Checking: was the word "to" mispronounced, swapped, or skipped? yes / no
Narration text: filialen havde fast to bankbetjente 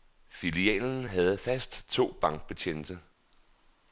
no